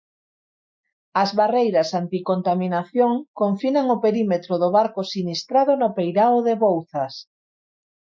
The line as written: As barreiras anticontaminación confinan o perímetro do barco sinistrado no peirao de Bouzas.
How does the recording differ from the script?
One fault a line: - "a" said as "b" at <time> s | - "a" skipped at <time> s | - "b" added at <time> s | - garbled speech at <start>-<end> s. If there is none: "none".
none